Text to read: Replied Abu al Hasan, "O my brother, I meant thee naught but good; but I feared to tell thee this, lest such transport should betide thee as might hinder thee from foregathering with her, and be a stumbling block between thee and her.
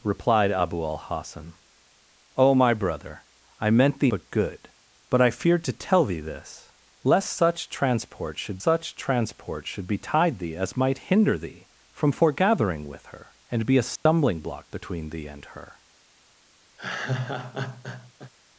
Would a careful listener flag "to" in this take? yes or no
no